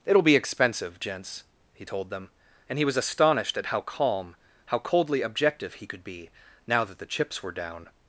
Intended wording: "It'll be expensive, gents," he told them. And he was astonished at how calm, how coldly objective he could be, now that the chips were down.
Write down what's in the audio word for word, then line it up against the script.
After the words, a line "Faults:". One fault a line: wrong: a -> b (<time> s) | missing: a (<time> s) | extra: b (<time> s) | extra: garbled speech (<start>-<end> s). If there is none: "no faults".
"It'll be expensive, gents," he told them. And he was astonished at how calm, how coldly objective he could be, now that the chips were down.
Faults:
no faults